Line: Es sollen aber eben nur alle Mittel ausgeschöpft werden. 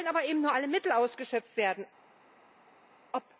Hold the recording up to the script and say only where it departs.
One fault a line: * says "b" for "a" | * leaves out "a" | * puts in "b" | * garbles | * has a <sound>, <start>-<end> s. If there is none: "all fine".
all fine